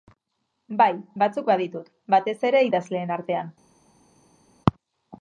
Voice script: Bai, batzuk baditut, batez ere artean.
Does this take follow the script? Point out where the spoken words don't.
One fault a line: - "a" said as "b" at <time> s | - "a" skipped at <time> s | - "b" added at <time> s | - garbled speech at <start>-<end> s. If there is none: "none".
- "idazleen" added at 2.7 s